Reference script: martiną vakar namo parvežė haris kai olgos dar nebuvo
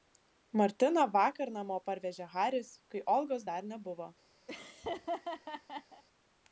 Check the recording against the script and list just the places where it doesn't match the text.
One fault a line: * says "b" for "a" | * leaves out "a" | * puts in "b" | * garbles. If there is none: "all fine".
all fine